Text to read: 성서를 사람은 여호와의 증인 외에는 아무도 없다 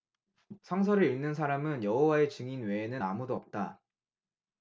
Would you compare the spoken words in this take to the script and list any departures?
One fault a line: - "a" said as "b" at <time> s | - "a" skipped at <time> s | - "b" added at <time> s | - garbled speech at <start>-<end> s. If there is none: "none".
- "읽는" added at 1.0 s